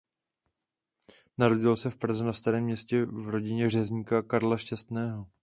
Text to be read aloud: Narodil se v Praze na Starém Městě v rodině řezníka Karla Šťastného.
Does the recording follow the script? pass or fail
pass